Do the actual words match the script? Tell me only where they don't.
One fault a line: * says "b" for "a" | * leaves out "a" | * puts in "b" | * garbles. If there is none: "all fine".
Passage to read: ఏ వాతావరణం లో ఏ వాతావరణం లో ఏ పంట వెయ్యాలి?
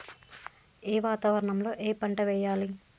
* leaves out "వాతావరణం లో ఏ"